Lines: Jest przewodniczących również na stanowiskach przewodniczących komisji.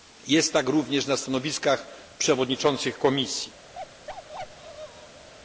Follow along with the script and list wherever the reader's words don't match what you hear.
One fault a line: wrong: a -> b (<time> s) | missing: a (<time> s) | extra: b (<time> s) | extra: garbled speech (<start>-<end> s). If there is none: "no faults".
wrong: przewodniczących -> tak (0.5 s)